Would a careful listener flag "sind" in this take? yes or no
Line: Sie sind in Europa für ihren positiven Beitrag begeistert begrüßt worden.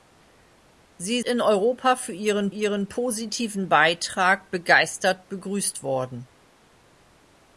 yes